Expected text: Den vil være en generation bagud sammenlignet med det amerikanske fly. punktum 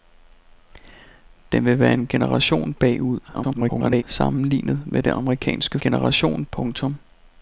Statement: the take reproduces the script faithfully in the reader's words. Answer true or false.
false